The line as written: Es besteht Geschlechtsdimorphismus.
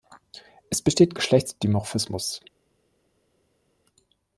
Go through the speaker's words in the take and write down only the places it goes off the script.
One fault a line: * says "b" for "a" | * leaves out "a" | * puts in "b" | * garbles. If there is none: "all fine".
all fine